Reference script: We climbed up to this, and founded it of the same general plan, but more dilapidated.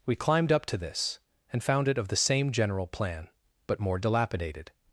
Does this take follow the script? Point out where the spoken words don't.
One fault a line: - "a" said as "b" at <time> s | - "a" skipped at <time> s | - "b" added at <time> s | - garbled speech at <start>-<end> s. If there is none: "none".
- "founded" said as "found" at 1.6 s